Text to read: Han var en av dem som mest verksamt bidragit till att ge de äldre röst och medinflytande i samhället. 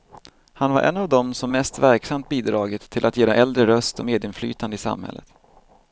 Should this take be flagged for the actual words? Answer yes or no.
no